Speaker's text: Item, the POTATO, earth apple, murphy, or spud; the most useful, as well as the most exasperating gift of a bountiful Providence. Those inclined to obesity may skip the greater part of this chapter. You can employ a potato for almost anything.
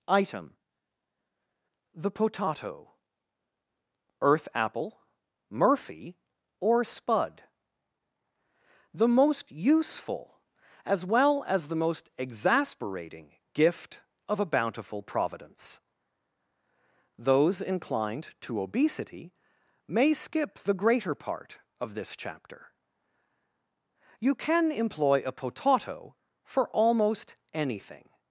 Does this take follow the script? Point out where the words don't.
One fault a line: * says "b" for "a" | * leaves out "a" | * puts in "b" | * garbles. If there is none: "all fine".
all fine